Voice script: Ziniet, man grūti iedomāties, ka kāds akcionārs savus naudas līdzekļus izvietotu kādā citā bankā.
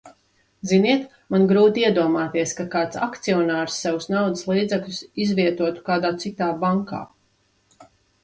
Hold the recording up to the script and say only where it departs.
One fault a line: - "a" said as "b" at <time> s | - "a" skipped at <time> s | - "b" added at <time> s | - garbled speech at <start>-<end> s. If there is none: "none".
none